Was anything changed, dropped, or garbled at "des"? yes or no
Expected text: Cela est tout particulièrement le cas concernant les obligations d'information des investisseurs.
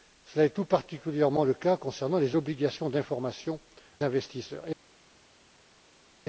yes